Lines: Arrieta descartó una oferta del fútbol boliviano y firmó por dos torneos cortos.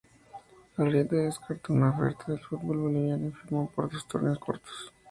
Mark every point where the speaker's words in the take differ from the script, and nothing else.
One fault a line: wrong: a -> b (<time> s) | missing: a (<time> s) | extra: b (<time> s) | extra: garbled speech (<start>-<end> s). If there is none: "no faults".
no faults